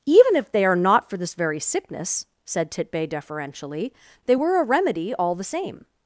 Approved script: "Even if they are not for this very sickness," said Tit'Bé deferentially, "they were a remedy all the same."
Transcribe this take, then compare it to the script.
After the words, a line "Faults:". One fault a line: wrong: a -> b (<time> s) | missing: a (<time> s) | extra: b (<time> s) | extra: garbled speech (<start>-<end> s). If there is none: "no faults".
"Even if they are not for this very sickness," said Tit'Bé deferentially, "they were a remedy all the same."
Faults:
no faults